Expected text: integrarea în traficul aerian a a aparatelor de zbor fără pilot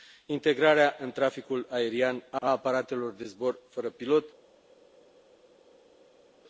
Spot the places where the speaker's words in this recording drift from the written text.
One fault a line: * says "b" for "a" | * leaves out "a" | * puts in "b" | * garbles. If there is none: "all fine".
all fine